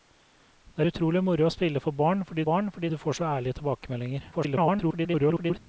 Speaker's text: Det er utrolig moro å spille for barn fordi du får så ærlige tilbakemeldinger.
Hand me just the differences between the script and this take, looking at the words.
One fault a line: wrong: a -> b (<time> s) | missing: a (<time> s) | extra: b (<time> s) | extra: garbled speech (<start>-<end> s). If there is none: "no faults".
extra: barn fordi (2.4 s)
extra: garbled speech (4.3-5.6 s)